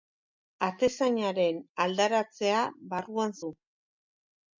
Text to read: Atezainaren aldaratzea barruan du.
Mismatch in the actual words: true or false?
false